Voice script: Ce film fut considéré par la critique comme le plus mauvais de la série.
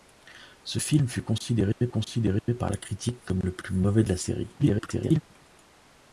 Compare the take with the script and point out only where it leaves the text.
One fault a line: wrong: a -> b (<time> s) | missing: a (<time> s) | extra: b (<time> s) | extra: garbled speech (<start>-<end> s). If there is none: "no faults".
extra: considéré (1.9 s)
extra: garbled speech (4.6-5.2 s)